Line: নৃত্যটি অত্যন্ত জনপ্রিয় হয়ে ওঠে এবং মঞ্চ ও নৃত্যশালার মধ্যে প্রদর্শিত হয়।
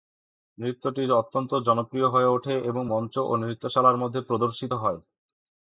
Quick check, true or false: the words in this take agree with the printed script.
true